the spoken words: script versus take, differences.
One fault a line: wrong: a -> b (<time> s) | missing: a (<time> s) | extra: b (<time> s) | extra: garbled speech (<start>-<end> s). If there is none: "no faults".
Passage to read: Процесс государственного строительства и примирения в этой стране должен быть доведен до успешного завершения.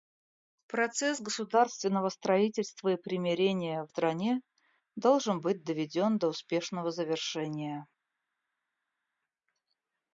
missing: этой (3.9 s)